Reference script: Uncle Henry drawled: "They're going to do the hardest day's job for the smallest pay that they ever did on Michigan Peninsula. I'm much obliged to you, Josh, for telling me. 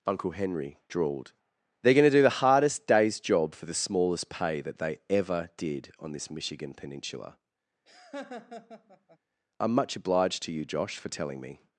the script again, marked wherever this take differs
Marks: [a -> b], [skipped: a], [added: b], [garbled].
Uncle Henry drawled: "They're going to do the hardest day's job for the smallest pay that they ever did on [added: this] Michigan Peninsula. I'm much obliged to you, Josh, for telling me.